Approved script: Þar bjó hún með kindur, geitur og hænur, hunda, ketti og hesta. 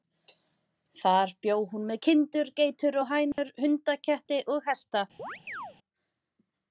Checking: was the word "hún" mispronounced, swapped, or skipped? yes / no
no